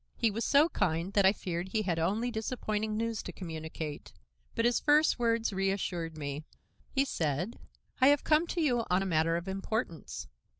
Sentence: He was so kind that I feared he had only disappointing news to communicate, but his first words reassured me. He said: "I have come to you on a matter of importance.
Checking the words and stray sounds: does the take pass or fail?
pass